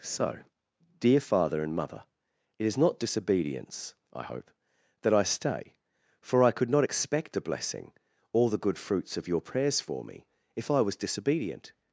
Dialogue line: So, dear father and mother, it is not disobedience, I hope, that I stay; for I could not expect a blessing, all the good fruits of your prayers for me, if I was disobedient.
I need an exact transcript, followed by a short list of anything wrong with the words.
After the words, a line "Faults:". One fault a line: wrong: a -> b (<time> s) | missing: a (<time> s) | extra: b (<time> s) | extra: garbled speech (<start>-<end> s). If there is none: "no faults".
So, dear father and mother, it is not disobedience, I hope, that I stay; for I could not expect a blessing, all the good fruits of your prayers for me, if I was disobedient.
Faults:
no faults